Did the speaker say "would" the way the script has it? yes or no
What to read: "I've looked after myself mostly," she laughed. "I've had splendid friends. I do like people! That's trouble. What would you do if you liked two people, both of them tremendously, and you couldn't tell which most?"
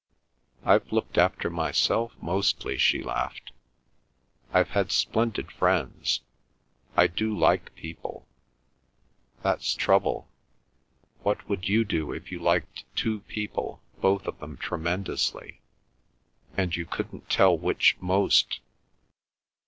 yes